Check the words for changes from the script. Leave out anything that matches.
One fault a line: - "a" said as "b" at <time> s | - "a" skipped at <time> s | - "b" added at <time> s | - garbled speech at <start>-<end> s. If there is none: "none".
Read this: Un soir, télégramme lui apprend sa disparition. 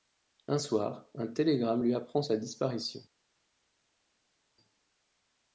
- "un" added at 1.1 s